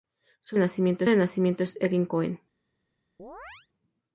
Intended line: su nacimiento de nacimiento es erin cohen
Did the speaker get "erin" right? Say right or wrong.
right